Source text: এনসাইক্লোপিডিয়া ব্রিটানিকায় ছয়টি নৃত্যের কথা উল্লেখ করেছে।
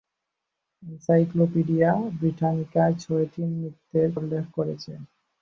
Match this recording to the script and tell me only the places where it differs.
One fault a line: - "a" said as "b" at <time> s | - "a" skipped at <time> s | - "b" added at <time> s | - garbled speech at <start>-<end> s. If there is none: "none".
- "কথা" skipped at 4.1 s